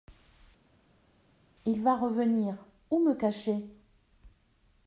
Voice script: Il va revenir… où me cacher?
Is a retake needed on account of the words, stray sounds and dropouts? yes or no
no